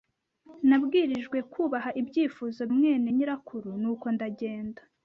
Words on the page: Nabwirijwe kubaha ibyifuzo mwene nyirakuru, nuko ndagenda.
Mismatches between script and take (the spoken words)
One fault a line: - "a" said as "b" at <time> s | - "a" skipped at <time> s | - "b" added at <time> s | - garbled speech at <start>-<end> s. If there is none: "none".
none